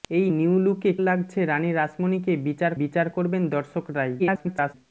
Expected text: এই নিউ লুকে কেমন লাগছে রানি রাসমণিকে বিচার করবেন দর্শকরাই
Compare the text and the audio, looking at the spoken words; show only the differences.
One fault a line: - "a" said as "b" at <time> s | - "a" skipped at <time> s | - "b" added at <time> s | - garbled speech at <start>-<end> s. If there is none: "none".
- "কেমন" skipped at 0.9 s
- "বিচার" added at 2.8 s
- garbled speech at 4.2-4.8 s